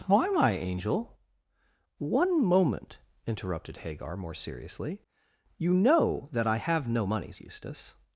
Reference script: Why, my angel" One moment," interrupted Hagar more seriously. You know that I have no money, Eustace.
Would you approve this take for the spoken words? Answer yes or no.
no